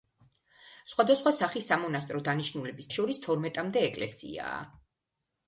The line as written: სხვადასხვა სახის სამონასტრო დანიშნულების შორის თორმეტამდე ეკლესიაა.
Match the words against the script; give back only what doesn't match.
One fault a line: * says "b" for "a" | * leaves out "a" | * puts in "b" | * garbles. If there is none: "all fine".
all fine